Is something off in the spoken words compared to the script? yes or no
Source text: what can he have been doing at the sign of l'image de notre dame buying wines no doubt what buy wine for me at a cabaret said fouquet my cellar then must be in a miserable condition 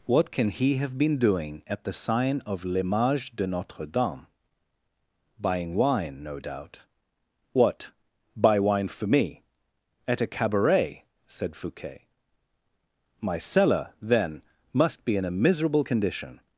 yes